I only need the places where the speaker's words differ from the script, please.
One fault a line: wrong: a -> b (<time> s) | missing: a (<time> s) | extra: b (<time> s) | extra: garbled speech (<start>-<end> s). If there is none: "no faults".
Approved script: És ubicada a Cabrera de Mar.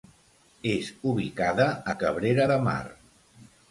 no faults